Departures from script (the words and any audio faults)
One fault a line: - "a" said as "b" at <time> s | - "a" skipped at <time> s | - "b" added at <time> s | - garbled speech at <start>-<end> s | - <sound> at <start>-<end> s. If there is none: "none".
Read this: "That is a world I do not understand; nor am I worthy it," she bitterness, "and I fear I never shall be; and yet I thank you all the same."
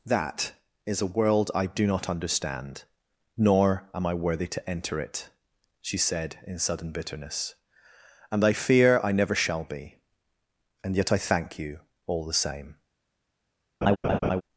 - "to enter" added at 4.5 s
- "said in sudden" added at 6.0 s
- laugh at 13.8-14.4 s